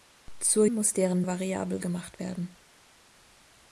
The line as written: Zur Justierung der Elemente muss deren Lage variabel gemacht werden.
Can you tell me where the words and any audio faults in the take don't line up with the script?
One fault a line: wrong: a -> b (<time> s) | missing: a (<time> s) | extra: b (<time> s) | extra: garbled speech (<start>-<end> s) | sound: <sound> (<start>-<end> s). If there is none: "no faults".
missing: Justierung der Elemente (0.7 s)
missing: Lage (1.2 s)